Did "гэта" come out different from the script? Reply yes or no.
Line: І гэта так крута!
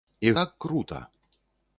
yes